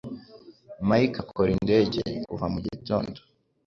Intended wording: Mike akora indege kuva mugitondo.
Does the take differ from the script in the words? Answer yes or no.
no